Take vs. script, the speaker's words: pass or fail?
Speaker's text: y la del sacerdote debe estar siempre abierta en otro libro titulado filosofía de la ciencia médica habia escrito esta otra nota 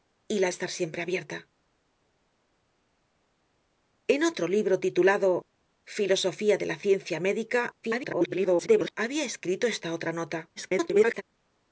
fail